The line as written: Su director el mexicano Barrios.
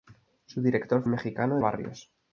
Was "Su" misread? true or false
false